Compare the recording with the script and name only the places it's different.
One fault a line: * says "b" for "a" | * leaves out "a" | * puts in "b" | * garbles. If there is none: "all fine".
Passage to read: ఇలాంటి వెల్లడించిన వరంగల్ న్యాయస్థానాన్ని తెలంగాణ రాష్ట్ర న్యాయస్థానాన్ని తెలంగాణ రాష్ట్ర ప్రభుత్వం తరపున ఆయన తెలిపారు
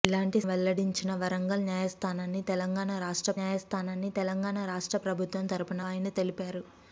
all fine